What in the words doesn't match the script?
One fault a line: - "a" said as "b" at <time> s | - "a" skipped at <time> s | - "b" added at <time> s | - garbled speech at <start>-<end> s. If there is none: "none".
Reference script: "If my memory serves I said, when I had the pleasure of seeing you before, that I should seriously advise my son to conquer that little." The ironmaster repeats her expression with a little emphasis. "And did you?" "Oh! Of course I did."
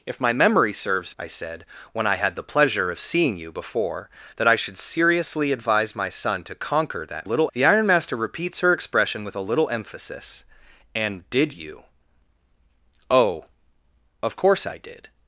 none